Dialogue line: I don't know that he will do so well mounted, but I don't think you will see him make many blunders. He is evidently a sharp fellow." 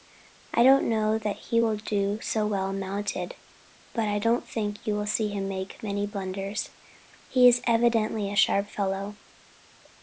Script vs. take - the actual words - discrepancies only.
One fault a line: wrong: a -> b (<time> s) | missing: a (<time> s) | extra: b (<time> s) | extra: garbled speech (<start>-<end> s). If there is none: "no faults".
no faults